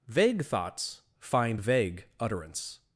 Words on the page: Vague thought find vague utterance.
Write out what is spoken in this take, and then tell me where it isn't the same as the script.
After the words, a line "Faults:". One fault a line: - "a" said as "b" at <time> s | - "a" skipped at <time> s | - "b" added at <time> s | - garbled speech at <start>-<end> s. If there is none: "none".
Vague thoughts find vague utterance.
Faults:
- "thought" said as "thoughts" at 0.4 s